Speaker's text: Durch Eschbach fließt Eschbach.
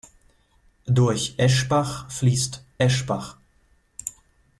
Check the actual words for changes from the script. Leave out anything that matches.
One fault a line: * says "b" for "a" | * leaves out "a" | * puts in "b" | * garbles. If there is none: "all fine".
all fine